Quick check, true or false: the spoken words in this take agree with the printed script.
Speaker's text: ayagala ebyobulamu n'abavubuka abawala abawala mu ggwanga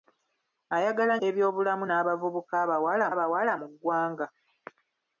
true